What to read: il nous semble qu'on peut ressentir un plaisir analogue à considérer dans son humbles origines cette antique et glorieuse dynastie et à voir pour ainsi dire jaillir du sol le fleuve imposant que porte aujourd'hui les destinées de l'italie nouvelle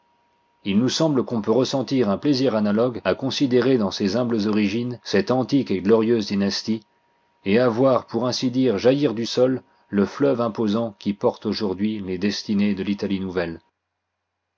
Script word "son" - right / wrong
wrong